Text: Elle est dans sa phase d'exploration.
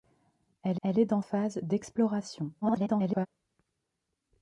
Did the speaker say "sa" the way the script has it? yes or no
no